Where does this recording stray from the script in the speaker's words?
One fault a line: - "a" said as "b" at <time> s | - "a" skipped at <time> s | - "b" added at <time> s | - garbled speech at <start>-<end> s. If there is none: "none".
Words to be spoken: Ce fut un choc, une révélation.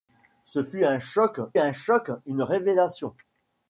- "un choc" added at 1.6 s